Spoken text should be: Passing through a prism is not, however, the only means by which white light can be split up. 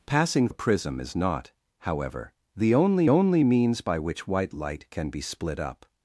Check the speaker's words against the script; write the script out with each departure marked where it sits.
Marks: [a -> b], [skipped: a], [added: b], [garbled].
Passing [skipped: through] a prism is not, however, the only [added: only] means by which white light can be split up.